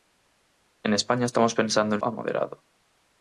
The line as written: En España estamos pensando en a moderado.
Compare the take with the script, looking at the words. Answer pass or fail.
pass